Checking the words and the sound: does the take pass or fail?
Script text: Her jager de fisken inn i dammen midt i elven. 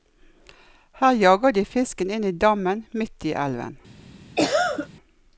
fail